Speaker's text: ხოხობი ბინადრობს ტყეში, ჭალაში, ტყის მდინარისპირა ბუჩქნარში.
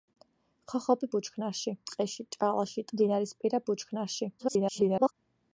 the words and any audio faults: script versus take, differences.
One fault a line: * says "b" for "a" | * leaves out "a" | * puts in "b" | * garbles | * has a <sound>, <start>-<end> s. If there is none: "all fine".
* says "ბუჩქნარში" for "ბინადრობს"
* leaves out "ტყის"
* garbles